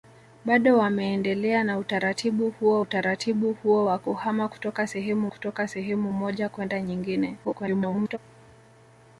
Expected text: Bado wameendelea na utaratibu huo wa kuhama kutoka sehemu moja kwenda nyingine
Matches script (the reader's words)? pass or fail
fail